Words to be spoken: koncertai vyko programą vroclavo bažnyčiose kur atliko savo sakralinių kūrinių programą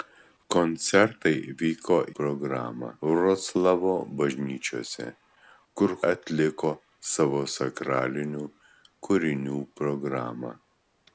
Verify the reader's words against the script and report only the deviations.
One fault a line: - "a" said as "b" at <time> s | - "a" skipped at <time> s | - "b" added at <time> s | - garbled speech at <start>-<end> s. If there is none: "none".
none